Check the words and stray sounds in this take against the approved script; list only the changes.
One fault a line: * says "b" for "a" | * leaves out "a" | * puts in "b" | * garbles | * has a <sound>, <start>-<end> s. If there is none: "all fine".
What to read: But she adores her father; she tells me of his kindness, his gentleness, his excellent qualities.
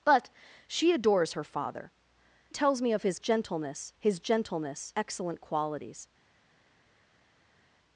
* leaves out "she"
* says "gentleness" for "kindness"
* leaves out "his"